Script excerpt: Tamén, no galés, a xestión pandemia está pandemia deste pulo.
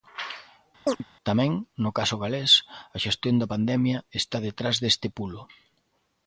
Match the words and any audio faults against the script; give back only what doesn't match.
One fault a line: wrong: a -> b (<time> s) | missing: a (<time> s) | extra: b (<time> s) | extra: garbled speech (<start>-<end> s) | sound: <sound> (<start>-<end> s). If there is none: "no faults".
sound: chirp (0.9-1.0 s)
extra: caso (2.0 s)
extra: da (3.4 s)
wrong: pandemia -> detrás (4.5 s)